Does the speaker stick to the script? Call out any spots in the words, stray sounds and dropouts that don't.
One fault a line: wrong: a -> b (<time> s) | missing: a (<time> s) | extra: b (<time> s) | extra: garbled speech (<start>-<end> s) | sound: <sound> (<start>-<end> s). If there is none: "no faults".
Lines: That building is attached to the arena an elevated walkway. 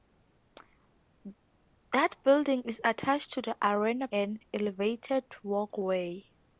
no faults